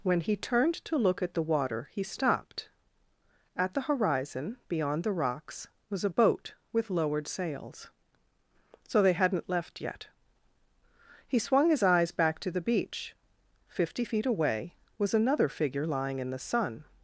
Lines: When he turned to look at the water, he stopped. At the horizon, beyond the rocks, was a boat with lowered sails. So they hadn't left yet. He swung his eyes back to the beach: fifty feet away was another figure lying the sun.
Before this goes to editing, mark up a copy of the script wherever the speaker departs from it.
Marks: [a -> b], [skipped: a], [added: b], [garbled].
When he turned to look at the water, he stopped. At the horizon, beyond the rocks, was a boat with lowered sails. So they hadn't left yet. He swung his eyes back to the beach: fifty feet away was another figure lying [added: in] the sun.